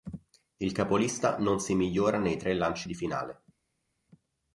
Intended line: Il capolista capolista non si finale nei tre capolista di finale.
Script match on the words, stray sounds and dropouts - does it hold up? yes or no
no